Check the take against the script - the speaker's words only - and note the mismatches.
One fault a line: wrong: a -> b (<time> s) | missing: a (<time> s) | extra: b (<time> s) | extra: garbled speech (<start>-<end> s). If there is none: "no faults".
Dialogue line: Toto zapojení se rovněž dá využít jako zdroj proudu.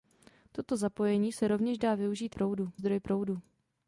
wrong: jako -> proudu (2.3 s)